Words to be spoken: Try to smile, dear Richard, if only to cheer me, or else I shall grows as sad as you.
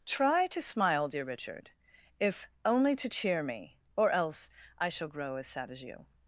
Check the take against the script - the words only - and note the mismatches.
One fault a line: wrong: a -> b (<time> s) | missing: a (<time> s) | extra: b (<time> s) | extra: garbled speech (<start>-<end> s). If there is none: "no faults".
wrong: grows -> grow (5.1 s)